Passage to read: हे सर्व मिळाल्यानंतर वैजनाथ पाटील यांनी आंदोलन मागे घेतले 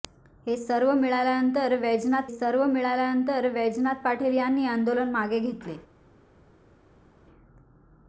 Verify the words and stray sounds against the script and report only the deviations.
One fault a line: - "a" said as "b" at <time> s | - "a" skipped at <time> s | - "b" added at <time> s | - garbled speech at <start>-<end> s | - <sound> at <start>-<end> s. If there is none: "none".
- "सर्व मिळाल्यानंतर वैजनाथ" added at 2.3 s